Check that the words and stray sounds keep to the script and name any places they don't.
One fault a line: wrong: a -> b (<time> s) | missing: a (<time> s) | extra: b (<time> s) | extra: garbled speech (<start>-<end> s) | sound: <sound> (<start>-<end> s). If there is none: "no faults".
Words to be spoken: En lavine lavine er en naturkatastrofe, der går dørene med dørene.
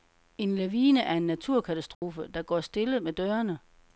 missing: lavine (1.0 s)
sound: dropout (1.9-2.0 s)
wrong: dørene -> stille (2.6 s)